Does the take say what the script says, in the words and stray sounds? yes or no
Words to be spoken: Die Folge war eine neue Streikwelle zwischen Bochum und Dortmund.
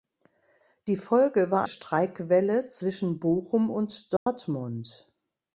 no